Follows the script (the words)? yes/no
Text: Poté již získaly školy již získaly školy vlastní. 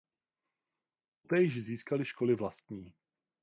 no